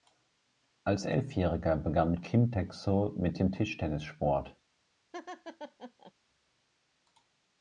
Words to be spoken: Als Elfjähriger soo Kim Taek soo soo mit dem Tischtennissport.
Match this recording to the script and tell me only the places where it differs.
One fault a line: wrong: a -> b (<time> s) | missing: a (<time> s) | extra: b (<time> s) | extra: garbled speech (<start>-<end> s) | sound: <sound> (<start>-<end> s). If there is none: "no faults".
wrong: soo -> begann (1.8 s)
missing: soo (3.1 s)
sound: laugh (5.1-6.1 s)